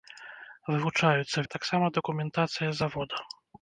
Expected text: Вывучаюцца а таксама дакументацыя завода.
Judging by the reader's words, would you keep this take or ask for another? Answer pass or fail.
pass